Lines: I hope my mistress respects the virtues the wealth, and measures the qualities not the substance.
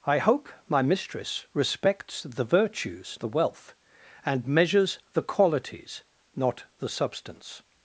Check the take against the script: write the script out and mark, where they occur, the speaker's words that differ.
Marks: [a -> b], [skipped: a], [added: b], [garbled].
I hope my mistress respects the virtues the wealth, and measures the qualities not the substance.